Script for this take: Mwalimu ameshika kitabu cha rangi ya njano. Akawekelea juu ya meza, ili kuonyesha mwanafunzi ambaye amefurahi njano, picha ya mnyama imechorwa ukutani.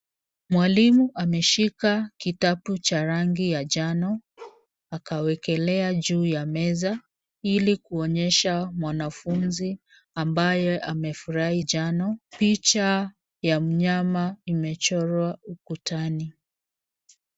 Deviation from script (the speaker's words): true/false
false